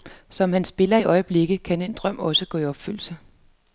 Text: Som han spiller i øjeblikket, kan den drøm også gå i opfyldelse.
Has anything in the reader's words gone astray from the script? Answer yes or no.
no